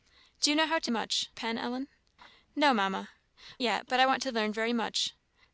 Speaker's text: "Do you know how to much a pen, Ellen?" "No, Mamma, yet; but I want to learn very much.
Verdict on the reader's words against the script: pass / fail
pass